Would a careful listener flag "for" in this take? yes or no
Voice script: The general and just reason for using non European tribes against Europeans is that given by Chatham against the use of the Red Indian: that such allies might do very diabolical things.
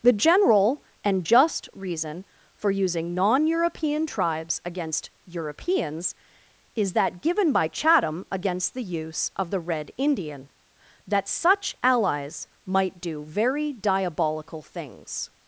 no